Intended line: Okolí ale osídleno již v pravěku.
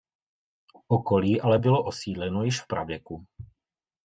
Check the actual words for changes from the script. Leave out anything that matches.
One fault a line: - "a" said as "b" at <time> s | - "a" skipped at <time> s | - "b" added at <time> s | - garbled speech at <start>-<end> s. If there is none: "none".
- "bylo" added at 1.6 s